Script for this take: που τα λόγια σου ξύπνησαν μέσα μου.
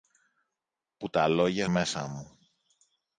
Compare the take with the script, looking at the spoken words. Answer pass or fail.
fail